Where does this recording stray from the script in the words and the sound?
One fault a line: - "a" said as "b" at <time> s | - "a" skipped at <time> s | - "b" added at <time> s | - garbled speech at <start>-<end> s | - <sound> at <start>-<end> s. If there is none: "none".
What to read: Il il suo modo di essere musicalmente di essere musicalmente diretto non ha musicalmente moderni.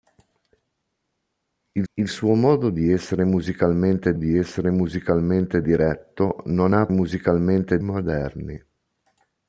none